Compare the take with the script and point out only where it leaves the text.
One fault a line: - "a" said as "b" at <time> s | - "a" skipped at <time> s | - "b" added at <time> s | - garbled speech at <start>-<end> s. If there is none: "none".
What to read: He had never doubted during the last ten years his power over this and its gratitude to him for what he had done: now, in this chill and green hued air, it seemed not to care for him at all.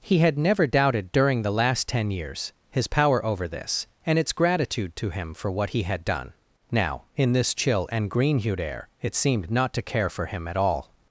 none